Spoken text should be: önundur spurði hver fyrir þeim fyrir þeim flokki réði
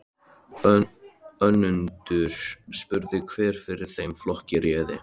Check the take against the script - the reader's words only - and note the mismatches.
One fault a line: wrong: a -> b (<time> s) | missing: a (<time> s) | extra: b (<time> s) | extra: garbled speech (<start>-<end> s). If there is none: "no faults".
missing: fyrir þeim (4.2 s)